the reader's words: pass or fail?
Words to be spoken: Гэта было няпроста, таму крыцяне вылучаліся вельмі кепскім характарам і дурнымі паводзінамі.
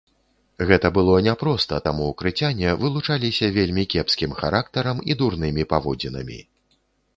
pass